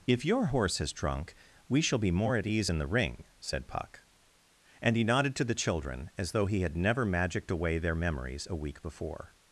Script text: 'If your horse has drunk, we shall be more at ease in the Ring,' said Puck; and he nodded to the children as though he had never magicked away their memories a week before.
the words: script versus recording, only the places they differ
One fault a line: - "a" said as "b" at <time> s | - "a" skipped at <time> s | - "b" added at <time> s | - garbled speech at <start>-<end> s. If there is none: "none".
none